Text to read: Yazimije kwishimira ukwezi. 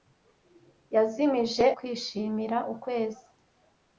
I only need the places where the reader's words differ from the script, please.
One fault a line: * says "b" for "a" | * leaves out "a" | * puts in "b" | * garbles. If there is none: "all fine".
all fine